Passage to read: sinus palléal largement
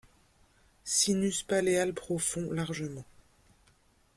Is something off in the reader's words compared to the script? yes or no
yes